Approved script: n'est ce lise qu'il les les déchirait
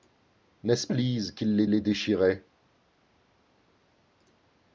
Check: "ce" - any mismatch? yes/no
no